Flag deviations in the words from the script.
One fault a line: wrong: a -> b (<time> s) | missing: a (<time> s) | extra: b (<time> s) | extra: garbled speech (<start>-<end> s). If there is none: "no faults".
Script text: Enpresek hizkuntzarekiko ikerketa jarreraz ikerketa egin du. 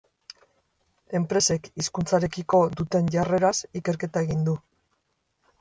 wrong: ikerketa -> duten (2.8 s)